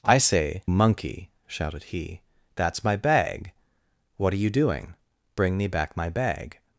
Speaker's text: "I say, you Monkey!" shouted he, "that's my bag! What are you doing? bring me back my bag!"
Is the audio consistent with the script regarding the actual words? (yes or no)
no